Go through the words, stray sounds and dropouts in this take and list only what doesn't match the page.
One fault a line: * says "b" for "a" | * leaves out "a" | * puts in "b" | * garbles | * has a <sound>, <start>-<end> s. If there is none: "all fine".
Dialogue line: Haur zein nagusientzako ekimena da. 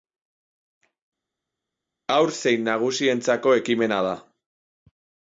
all fine